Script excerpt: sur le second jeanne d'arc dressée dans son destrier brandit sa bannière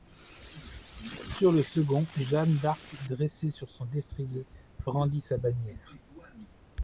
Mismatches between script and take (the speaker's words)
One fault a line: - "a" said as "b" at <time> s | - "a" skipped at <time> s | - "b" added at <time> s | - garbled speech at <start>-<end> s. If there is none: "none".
- "dans" said as "sur" at 3.5 s